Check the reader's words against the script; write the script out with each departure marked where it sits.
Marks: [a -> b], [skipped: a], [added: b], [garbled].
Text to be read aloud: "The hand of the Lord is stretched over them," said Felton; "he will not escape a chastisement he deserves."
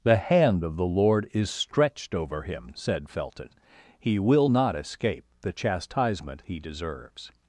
"The hand of the Lord is stretched over [them," -> him] said Felton; "he will not escape [a -> the] chastisement he deserves."